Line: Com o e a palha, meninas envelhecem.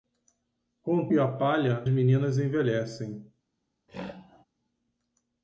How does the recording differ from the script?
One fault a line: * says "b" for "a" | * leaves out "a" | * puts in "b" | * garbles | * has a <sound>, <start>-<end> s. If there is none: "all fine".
* has a throat clearing, 3.9-4.4 s